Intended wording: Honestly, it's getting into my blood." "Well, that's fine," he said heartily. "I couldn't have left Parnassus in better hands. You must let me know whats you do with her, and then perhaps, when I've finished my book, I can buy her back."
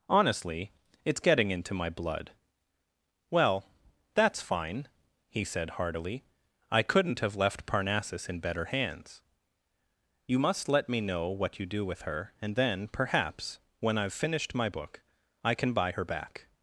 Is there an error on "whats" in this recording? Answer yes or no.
yes